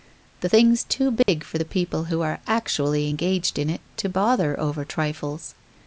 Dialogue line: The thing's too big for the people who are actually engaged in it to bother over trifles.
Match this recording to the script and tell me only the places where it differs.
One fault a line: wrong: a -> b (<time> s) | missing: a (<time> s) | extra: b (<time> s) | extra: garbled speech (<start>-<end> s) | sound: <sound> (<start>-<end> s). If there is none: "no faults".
sound: dropout (1.2-1.3 s)